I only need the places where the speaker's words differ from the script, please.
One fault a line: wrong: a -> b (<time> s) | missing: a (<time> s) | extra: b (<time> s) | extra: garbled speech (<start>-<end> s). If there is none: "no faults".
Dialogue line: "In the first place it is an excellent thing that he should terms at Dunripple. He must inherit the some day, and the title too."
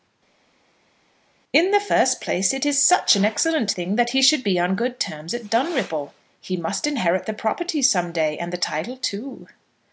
extra: such (2.8 s)
extra: be on good (4.4 s)
extra: property (7.3 s)